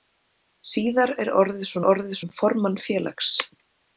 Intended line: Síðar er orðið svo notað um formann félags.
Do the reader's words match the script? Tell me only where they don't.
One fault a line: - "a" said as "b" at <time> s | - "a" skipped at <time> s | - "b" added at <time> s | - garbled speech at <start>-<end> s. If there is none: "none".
- "notað" said as "orðið" at 1.9 s